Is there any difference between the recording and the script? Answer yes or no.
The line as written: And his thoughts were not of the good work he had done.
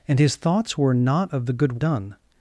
yes